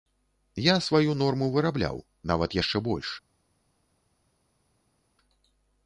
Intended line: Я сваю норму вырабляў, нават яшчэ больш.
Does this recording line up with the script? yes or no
yes